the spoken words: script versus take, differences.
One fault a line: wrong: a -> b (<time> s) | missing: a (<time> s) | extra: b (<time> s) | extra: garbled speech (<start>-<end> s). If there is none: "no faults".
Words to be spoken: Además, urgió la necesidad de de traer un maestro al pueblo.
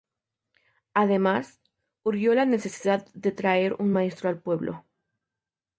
missing: de (3.3 s)